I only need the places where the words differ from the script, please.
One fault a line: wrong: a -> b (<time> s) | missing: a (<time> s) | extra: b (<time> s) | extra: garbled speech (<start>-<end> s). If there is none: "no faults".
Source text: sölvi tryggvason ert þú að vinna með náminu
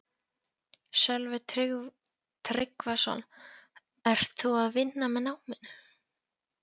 no faults